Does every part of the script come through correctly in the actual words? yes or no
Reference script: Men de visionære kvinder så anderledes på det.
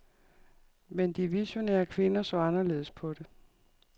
yes